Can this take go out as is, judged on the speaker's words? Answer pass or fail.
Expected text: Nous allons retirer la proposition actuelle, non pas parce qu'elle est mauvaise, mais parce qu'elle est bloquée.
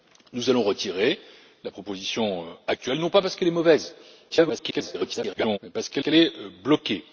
fail